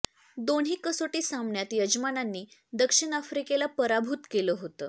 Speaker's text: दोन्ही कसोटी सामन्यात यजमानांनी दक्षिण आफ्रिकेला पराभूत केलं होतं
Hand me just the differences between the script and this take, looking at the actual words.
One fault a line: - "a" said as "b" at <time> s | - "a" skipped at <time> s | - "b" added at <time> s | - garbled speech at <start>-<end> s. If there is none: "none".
none